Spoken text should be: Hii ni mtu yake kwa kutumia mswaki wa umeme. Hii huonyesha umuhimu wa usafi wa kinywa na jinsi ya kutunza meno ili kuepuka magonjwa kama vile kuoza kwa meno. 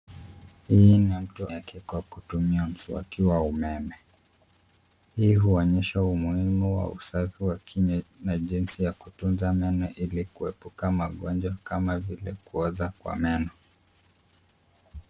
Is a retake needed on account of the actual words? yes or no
no